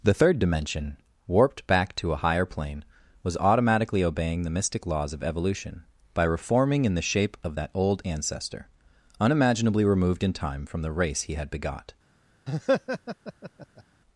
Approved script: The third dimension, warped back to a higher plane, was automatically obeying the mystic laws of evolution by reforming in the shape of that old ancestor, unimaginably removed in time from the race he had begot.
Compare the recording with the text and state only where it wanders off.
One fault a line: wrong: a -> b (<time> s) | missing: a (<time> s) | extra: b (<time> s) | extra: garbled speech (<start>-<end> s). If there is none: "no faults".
no faults